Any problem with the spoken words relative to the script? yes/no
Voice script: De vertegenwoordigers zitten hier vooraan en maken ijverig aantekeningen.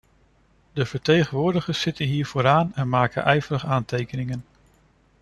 no